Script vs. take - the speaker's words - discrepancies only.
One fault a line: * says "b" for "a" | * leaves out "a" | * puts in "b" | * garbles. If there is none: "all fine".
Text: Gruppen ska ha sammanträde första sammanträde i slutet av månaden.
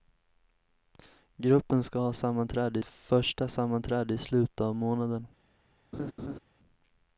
all fine